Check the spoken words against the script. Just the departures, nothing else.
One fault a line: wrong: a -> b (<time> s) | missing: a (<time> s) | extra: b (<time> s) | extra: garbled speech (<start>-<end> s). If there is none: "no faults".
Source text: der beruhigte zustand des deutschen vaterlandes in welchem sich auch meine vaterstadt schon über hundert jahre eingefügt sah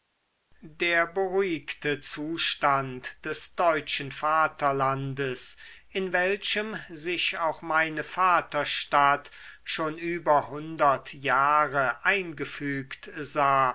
no faults